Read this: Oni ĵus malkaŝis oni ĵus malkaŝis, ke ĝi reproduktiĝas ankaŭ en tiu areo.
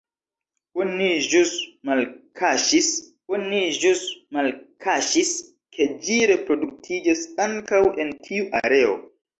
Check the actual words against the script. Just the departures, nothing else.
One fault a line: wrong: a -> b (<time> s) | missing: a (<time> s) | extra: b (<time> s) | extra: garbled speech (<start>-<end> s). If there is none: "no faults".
no faults